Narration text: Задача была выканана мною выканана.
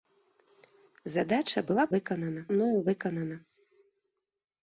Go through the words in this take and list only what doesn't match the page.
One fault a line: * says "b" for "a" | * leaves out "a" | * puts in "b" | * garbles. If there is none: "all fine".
all fine